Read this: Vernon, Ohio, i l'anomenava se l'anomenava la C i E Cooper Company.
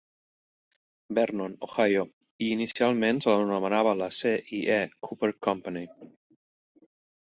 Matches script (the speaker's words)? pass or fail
fail